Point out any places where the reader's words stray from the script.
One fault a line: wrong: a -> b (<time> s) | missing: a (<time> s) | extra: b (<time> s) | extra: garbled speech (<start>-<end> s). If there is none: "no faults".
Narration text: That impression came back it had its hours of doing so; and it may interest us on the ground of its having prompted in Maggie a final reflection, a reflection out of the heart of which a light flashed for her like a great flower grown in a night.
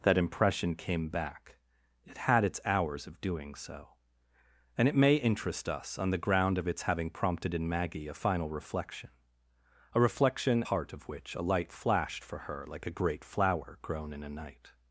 missing: out of the (10.7 s)